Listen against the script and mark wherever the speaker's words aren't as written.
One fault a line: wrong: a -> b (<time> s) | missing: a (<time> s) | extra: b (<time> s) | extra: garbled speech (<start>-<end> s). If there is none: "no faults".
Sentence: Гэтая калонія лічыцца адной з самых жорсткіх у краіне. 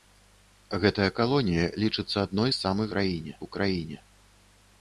wrong: жорсткіх -> краіне (3.0 s)